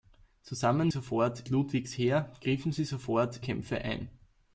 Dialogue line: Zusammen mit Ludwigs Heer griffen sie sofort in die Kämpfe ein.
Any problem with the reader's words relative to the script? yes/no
yes